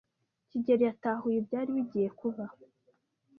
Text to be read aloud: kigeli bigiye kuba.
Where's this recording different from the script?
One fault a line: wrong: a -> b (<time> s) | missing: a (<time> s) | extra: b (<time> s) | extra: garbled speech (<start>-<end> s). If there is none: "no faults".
extra: yatahuye ibyari (0.9 s)